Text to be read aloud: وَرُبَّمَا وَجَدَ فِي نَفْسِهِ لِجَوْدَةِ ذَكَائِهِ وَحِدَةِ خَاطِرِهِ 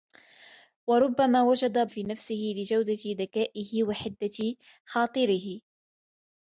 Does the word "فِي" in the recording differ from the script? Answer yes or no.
no